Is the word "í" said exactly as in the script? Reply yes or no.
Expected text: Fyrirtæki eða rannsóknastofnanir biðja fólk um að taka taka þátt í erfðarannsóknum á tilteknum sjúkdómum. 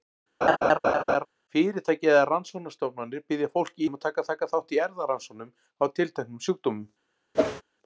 yes